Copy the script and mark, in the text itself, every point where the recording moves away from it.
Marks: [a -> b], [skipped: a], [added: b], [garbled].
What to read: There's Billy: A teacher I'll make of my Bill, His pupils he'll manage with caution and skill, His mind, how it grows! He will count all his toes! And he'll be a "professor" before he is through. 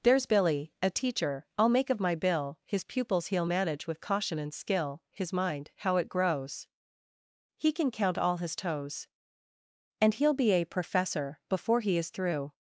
There's Billy: A teacher I'll make of my Bill, His pupils he'll manage with caution and skill, His mind, how it grows! He [will -> can] count all his toes! And he'll be a "professor" before he is through.